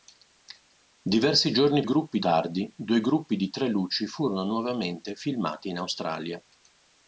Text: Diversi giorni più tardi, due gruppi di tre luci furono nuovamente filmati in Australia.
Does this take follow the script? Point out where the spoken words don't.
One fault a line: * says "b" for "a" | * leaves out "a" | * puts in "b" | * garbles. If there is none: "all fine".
* says "gruppi" for "più"